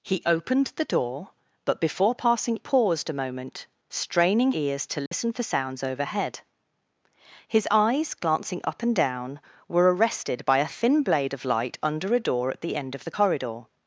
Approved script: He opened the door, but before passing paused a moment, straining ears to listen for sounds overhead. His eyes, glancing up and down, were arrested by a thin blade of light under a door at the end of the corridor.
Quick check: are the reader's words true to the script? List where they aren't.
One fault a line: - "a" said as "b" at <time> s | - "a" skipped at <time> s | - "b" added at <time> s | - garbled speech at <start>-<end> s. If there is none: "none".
none